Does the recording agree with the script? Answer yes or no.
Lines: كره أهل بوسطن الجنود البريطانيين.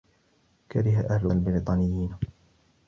no